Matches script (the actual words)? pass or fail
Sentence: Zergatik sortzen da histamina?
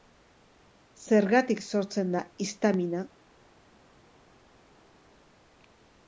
pass